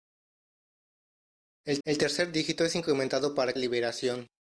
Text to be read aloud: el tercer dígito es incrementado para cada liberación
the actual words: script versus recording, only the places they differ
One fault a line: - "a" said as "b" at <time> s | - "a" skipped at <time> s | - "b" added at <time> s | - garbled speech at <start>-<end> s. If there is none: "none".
- "el" added at 1.8 s
- "cada" skipped at 3.5 s